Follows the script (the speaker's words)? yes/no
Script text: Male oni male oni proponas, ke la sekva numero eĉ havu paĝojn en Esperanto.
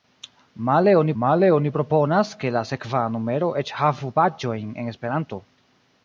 yes